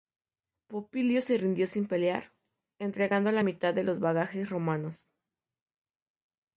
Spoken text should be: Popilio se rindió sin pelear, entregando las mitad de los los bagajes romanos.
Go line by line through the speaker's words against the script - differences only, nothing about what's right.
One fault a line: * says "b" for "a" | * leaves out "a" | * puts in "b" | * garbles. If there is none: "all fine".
* says "la" for "las"
* leaves out "los"